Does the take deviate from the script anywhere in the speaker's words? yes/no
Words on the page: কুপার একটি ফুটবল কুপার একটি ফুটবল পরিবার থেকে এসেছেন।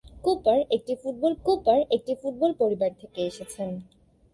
no